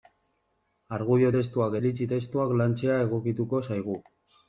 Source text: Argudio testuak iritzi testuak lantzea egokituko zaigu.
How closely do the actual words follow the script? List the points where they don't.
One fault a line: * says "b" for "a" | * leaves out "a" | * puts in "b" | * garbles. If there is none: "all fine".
all fine